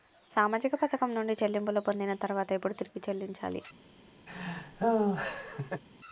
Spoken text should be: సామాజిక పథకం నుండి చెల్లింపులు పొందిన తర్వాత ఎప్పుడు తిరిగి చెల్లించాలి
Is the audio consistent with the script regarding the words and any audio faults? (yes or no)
no